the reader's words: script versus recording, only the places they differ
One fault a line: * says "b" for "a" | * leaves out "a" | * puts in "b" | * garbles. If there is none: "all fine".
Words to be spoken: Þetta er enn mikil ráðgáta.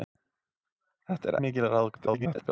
* leaves out "enn"
* garbles